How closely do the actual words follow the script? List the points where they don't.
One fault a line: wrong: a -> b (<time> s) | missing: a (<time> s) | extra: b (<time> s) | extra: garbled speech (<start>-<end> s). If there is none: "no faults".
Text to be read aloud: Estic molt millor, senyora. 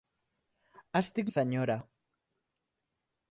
missing: molt millor (1.3 s)